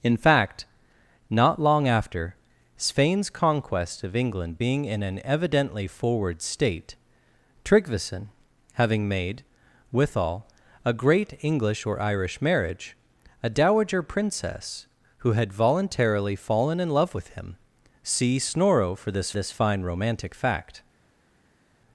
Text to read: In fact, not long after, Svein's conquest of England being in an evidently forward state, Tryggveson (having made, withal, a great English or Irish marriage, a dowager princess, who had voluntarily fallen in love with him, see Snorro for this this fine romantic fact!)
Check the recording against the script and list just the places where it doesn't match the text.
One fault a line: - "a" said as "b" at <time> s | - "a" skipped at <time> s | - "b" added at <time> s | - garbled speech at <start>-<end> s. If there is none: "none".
none